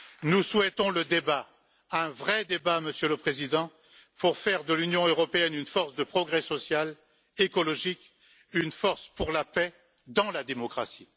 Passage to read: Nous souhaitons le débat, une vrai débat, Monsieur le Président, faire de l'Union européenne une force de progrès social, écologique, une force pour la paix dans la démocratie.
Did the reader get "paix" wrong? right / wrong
right